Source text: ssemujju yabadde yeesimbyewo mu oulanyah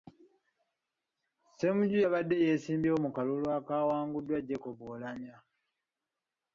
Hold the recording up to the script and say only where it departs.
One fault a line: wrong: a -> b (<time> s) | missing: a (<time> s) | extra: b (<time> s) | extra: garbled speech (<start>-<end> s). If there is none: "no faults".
extra: kalulu akaawanguddwa jacob (3.2 s)